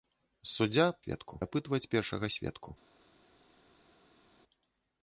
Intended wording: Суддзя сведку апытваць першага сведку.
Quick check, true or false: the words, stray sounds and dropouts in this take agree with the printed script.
true